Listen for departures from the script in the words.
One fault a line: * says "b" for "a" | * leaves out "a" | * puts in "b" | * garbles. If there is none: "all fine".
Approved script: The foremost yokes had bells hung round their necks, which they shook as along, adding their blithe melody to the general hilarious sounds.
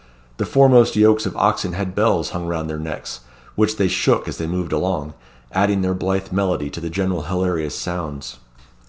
* puts in "of oxen"
* puts in "they moved"